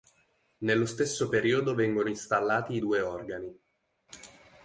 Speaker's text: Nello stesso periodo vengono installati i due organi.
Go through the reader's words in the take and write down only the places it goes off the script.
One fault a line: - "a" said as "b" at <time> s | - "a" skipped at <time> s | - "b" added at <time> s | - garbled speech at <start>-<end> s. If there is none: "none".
none